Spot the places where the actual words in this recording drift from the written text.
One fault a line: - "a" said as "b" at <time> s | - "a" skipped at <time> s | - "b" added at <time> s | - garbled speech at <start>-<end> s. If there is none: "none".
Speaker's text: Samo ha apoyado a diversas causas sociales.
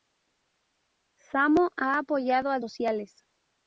- "diversas causas" skipped at 2.6 s